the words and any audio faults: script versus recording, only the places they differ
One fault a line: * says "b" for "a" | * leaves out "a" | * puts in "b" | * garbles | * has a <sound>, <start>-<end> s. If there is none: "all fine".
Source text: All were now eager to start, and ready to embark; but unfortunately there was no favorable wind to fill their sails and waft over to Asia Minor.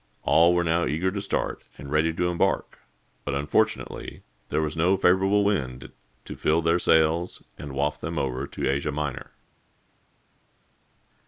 * puts in "them"